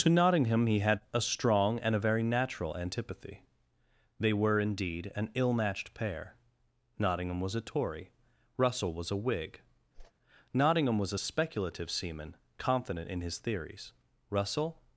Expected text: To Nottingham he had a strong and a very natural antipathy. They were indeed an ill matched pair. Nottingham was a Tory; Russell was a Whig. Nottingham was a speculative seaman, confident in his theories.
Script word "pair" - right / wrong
right